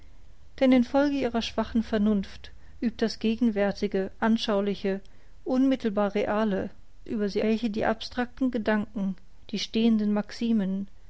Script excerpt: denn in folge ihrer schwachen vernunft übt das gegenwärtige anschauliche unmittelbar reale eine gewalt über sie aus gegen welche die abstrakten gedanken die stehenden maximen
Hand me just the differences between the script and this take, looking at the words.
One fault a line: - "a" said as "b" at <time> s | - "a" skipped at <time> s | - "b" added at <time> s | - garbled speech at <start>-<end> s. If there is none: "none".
- "eine gewalt" skipped at 6.7 s
- "aus gegen" skipped at 7.4 s